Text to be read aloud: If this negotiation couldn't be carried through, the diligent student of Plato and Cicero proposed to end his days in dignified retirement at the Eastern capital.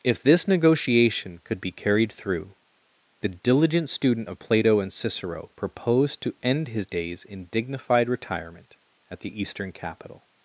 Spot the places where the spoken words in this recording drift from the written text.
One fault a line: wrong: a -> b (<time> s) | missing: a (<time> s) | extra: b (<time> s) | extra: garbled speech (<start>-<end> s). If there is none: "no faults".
wrong: couldn't -> could (1.4 s)